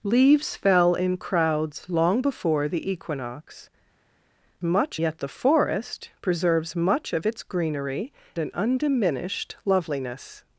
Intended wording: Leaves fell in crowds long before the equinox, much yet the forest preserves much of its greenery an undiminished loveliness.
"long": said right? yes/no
yes